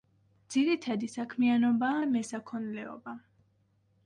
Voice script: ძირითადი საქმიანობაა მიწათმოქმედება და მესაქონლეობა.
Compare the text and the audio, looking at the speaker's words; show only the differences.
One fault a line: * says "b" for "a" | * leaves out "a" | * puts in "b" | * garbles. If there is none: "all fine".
* leaves out "მიწათმოქმედება"